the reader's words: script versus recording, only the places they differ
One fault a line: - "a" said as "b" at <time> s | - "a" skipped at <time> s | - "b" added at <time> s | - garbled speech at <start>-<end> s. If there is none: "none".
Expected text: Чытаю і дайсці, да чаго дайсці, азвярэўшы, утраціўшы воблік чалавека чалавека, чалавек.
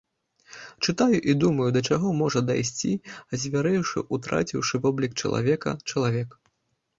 - "дайсці" said as "думаю" at 1.4 s
- "можа" added at 2.2 s
- "чалавека" skipped at 5.8 s